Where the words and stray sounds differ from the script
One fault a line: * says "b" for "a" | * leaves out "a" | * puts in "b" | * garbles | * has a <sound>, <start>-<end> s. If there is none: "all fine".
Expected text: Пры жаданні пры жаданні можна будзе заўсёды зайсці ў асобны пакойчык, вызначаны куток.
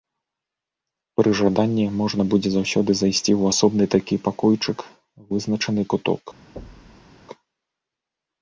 * leaves out "пры жаданні"
* puts in "такі"
* has a thud, 6.6-7.1 s